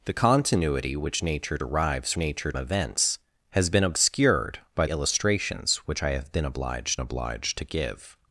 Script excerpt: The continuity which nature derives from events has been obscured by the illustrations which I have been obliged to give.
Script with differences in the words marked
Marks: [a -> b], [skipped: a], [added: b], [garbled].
The continuity which nature derives [from -> nature] events has been obscured by [skipped: the] illustrations which I have been obliged [added: obliged] to give.